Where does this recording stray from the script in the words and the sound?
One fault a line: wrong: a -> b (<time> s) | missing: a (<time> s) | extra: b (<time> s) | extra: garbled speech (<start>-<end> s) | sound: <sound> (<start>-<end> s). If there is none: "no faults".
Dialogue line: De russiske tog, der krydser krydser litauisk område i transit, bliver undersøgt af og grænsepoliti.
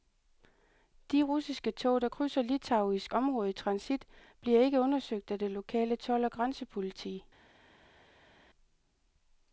missing: krydser (2.4 s)
extra: ikke (4.6 s)
extra: det lokale told (5.4 s)